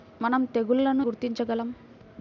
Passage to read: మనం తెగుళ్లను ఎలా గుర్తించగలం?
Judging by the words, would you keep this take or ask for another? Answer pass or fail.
fail